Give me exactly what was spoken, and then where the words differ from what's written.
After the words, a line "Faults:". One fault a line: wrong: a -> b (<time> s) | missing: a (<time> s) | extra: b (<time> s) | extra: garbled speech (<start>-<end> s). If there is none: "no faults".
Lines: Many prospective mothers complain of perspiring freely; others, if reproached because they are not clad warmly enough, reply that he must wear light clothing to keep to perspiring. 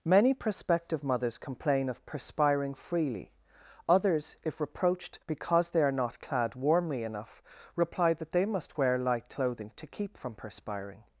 Many prospective mothers complain of perspiring freely; others, if reproached because they are not clad warmly enough, reply that they must wear light clothing to keep from perspiring.
Faults:
wrong: he -> they (8.3 s)
wrong: to -> from (10.2 s)